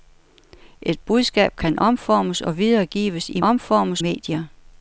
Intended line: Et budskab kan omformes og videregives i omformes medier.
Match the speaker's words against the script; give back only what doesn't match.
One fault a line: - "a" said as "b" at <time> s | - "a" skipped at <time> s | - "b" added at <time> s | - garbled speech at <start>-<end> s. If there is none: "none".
none